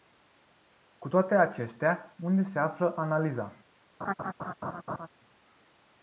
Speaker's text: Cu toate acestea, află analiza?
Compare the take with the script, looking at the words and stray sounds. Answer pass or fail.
fail